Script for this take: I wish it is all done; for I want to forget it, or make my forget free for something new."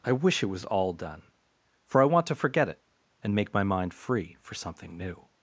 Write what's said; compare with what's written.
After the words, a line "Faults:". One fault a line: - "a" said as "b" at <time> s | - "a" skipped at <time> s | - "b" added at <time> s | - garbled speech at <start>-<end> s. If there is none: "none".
I wish it was all done; for I want to forget it, and make my mind free for something new."
Faults:
- "is" said as "was" at 0.5 s
- "or" said as "and" at 3.2 s
- "forget" said as "mind" at 3.6 s